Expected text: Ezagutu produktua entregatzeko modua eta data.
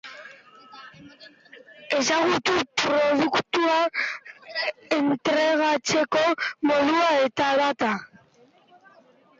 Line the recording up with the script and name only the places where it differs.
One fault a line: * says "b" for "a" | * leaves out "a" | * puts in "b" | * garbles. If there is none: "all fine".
all fine